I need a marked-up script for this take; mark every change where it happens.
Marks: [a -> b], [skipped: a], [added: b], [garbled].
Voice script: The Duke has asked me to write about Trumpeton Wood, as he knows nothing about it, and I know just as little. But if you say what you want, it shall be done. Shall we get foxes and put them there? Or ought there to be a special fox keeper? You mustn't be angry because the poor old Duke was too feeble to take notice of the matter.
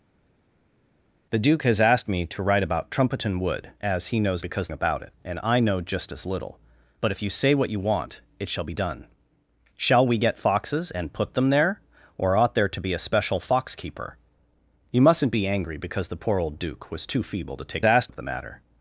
The Duke has asked me to write about Trumpeton Wood, as he knows [nothing -> because] about it, and I know just as little. But if you say what you want, it shall be done. Shall we get foxes and put them there? Or ought there to be a special fox keeper? You mustn't be angry because the poor old Duke was too feeble to take [notice -> asked] of the matter.